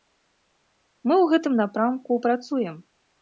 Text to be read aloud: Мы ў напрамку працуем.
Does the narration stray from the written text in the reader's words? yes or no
yes